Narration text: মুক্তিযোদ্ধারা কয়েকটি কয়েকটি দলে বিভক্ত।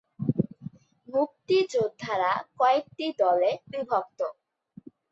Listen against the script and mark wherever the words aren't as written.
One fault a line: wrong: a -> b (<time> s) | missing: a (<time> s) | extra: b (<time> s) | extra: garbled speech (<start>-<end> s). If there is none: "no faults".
missing: কয়েকটি (3.0 s)